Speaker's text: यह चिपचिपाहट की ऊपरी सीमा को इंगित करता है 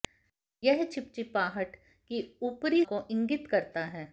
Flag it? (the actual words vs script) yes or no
yes